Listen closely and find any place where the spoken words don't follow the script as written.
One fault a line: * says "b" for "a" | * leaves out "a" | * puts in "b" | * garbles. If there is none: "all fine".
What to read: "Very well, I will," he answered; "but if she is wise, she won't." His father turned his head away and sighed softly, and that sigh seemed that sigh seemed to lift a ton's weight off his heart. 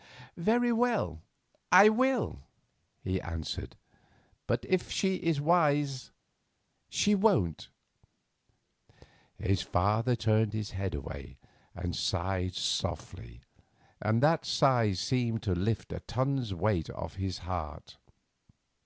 * leaves out "that sigh seemed"